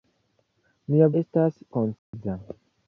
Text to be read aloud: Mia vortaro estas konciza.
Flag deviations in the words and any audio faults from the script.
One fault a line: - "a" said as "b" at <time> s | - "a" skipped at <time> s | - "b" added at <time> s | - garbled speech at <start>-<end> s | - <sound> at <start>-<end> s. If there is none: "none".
- "vortaro" skipped at 1.1 s
- dropout at 2.0-2.1 s